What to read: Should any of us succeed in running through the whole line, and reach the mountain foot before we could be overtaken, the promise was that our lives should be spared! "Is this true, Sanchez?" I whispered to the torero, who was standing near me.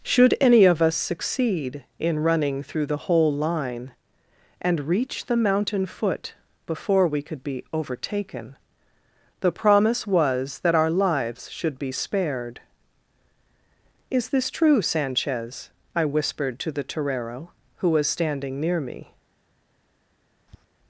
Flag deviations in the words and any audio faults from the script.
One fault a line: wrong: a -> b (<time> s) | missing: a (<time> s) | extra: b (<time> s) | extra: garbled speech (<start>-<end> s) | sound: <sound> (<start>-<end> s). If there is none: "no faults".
sound: tap (20.5-20.7 s)